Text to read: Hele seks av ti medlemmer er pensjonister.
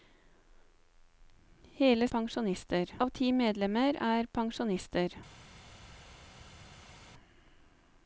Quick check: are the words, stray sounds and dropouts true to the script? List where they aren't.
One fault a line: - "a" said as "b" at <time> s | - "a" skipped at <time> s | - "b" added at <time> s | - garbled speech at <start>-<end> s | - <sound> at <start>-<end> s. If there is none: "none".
- "seks" said as "pensjonister" at 2.1 s